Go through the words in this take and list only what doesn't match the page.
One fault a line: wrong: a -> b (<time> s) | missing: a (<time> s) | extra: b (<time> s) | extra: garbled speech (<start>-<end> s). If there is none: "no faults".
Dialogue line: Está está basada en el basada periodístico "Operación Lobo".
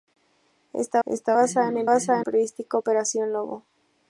no faults